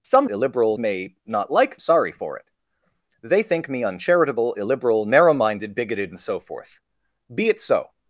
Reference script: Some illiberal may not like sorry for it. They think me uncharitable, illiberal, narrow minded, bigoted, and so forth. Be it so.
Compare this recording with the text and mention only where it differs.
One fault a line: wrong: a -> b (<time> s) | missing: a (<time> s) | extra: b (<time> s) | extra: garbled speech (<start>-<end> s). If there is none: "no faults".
no faults